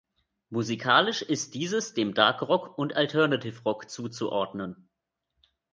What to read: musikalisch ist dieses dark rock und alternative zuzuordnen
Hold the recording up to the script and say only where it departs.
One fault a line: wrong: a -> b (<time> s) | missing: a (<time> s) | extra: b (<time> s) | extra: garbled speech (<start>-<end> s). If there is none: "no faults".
extra: dem (1.9 s)
extra: rock (3.6 s)